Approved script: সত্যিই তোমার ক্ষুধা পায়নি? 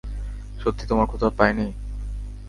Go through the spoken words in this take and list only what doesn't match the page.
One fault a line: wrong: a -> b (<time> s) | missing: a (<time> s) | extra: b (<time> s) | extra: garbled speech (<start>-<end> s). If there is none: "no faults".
no faults